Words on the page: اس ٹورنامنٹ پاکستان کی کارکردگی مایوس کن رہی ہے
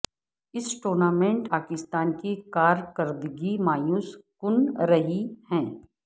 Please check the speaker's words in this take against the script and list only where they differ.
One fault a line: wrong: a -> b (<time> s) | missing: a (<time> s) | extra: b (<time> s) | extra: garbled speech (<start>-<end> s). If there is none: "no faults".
no faults